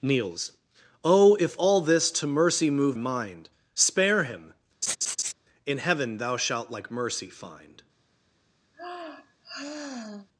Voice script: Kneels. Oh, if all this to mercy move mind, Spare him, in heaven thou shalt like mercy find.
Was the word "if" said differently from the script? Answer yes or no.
no